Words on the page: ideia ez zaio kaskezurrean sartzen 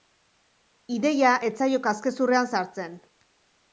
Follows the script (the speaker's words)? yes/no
yes